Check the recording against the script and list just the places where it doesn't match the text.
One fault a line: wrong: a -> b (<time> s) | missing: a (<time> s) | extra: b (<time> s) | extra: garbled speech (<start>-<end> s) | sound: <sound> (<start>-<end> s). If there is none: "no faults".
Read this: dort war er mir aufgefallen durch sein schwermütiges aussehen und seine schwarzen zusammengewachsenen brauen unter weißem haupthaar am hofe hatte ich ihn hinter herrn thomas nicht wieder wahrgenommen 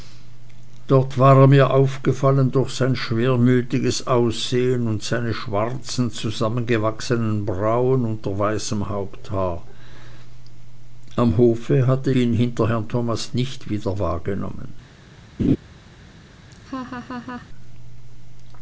missing: ich (12.1 s)
sound: laugh (15.4-15.6 s)
sound: laugh (16.5-17.5 s)